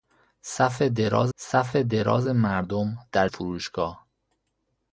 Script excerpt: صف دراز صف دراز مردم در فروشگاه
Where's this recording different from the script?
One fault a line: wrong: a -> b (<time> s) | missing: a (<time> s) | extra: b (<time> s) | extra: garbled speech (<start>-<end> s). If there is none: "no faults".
no faults